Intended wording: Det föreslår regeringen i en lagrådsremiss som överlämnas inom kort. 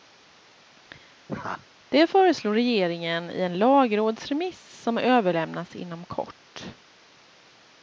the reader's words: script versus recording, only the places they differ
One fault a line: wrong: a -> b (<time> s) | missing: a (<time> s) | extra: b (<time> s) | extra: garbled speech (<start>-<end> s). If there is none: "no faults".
no faults